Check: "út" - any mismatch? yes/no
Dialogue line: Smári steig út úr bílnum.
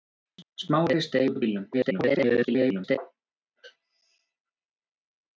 yes